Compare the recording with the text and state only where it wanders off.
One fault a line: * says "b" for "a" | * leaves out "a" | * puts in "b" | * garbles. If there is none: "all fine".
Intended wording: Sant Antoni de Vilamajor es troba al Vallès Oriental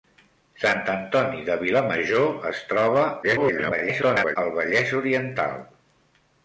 * garbles